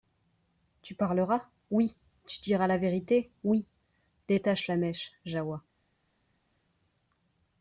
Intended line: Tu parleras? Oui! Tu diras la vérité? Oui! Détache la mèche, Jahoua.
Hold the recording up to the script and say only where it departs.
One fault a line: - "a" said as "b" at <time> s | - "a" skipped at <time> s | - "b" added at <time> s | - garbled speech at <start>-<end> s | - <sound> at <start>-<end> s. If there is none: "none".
none